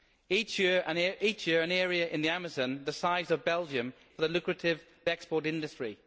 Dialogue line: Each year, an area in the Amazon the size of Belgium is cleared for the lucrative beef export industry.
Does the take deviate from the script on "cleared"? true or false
true